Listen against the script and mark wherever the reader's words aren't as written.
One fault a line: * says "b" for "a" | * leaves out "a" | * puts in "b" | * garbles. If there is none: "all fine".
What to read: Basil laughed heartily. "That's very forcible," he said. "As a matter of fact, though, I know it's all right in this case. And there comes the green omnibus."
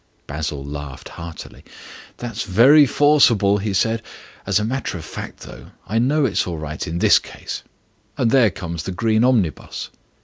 all fine